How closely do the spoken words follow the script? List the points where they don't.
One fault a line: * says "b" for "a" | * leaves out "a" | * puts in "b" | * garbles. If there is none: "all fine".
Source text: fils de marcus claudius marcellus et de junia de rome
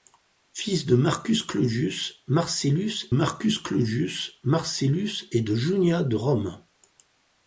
* puts in "marcus claudius marcellus"